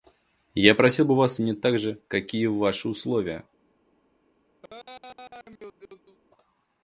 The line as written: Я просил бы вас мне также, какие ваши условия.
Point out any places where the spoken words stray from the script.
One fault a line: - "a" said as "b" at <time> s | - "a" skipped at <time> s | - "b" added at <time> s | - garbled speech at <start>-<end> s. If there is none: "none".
none